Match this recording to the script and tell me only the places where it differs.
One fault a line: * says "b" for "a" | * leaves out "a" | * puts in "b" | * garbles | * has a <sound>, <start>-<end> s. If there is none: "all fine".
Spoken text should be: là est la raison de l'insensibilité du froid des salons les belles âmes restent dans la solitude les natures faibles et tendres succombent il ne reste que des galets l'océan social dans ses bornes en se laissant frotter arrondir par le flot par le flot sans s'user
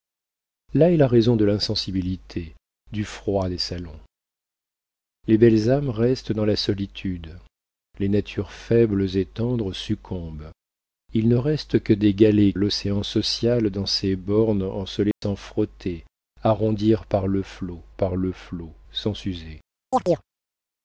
* has a dropout, 15.1-15.2 s
* has a chirp, 19.9-20.3 s